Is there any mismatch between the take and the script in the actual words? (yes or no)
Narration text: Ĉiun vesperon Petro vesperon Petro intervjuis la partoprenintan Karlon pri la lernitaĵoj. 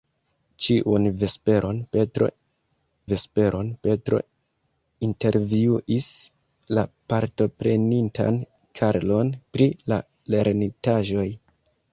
no